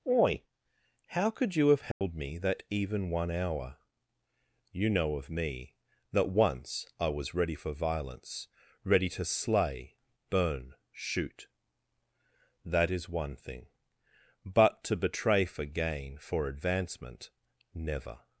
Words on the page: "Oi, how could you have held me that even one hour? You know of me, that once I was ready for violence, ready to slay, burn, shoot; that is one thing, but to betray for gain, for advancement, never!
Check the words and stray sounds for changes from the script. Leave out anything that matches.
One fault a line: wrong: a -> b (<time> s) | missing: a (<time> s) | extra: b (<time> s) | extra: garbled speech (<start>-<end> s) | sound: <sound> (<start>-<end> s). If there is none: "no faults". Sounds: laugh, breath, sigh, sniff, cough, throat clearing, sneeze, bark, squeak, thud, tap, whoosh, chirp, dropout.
sound: dropout (1.9-2.0 s)